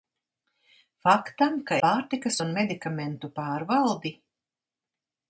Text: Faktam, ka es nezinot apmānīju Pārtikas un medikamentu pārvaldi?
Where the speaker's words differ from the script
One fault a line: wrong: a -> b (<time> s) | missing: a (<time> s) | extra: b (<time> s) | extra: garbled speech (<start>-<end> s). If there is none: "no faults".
missing: es nezinot apmānīju (1.8 s)